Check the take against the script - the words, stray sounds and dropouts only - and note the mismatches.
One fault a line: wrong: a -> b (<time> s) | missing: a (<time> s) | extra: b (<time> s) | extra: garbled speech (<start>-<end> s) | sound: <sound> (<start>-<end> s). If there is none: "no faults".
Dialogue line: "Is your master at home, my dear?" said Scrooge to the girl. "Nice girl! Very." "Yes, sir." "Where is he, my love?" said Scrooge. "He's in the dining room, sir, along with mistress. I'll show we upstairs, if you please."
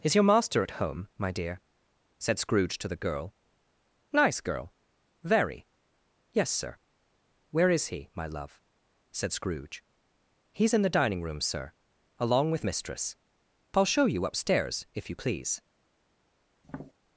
wrong: we -> you (14.0 s)
sound: tap (16.6-16.9 s)